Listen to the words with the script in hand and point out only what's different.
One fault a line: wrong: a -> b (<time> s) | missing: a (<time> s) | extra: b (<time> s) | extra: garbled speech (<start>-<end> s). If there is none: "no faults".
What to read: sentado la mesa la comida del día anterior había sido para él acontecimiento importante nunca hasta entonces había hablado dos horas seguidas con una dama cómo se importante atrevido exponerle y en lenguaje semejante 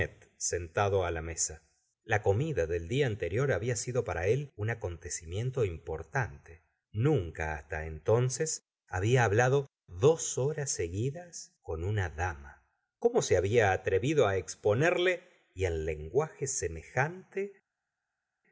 extra: un (4.5 s)
wrong: importante -> había (13.4 s)